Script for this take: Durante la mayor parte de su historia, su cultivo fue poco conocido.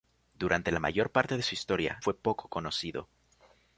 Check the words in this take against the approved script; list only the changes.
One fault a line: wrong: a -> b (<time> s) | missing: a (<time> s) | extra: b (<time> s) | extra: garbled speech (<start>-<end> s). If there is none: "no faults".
missing: su cultivo (2.0 s)